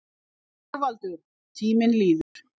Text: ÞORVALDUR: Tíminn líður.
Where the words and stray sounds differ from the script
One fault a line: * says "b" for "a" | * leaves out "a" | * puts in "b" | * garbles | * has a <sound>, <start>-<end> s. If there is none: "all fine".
* has a dropout, 2.2-2.4 s